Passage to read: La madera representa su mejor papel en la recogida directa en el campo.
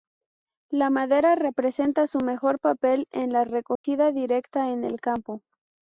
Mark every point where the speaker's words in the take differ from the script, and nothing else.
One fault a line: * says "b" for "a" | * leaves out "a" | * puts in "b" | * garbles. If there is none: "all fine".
all fine